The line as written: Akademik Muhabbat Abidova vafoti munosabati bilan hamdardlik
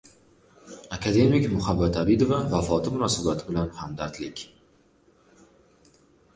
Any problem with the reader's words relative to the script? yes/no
no